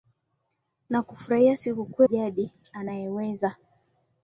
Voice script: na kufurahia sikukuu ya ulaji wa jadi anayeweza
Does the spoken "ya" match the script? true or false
false